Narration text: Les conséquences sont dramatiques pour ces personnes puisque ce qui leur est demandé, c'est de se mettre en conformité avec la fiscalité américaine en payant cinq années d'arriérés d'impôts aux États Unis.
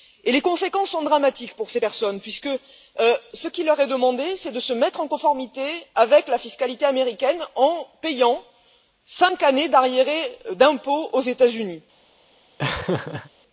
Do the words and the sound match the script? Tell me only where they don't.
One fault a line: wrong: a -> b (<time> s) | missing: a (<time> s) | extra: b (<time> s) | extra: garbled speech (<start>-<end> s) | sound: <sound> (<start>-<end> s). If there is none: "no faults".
sound: laugh (12.6-13.3 s)